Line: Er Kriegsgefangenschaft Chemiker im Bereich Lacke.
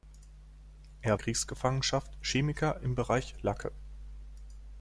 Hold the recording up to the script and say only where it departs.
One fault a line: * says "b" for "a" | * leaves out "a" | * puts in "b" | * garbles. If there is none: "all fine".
all fine